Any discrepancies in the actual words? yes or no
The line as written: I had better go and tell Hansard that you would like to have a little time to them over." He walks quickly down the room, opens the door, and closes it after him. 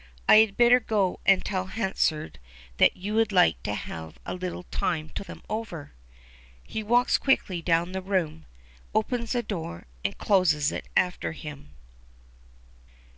no